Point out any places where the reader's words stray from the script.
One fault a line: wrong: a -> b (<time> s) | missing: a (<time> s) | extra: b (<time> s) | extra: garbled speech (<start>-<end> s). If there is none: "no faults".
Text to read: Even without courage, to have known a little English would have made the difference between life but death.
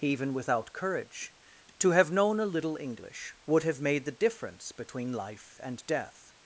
wrong: but -> and (5.6 s)